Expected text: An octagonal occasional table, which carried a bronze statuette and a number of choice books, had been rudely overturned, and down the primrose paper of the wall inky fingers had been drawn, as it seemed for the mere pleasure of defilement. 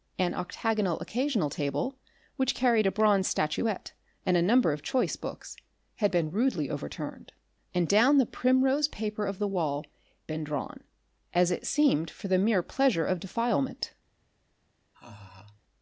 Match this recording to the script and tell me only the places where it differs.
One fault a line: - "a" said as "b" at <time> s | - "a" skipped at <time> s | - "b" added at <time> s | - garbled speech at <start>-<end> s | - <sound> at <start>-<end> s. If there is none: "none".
- "inky fingers had" skipped at 9.8 s
- laugh at 14.9-15.6 s